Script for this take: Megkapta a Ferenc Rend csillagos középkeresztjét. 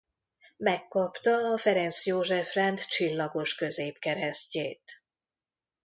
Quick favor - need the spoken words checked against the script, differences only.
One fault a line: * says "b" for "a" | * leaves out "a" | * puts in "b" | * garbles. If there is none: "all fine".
* puts in "József"